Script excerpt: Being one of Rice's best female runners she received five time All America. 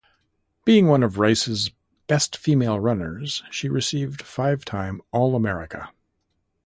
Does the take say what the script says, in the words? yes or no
yes